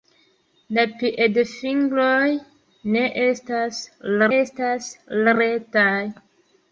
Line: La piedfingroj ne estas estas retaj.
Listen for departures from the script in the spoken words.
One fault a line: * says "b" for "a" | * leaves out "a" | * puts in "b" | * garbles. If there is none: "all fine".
all fine